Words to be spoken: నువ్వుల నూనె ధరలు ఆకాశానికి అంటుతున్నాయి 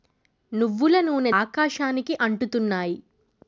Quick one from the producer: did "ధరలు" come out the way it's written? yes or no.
no